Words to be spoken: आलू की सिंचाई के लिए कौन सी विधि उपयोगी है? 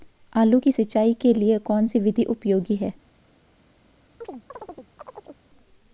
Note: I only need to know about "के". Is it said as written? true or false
true